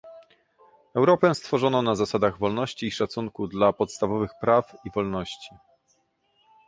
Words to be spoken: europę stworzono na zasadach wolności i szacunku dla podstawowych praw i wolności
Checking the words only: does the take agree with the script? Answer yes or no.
yes